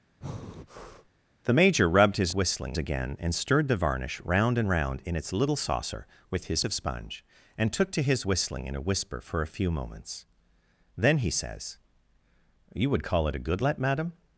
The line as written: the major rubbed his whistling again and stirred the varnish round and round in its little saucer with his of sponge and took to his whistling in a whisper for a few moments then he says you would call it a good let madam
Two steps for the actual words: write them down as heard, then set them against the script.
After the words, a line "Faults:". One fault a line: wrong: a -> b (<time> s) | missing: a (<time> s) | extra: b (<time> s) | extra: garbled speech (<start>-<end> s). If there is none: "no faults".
the major rubbed his whistling again and stirred the varnish round and round in its little saucer with his of sponge and took to his whistling in a whisper for a few moments then he says you would call it a good let madam
Faults:
no faults